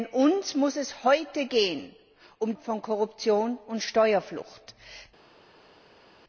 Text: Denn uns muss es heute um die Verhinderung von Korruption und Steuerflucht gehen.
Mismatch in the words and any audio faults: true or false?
true